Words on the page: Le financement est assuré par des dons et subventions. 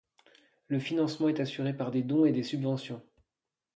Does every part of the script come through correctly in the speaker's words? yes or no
no